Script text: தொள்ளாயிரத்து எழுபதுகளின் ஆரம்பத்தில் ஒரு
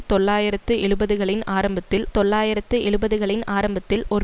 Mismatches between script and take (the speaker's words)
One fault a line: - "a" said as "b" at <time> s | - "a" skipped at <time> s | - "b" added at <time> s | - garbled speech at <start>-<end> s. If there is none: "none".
- "தொள்ளாயிரத்து எழுபதுகளின் ஆரம்பத்தில்" added at 2.1 s